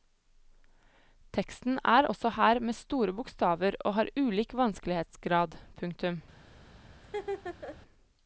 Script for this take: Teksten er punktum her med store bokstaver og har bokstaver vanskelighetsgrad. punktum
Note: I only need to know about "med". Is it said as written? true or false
true